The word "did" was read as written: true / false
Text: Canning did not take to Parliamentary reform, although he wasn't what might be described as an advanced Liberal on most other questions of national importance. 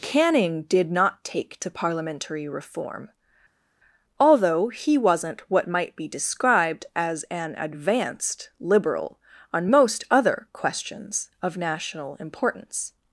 true